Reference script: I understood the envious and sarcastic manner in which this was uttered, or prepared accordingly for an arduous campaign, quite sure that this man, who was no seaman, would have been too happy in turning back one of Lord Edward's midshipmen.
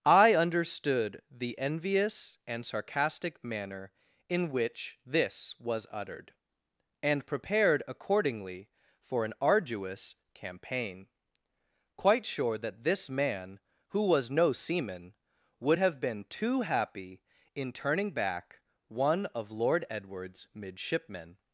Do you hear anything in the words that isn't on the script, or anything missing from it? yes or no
yes